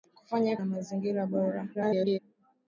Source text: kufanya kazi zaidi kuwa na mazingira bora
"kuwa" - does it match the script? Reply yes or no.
no